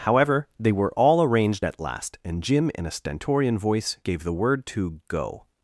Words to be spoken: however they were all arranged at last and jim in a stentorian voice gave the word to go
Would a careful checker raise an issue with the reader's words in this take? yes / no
no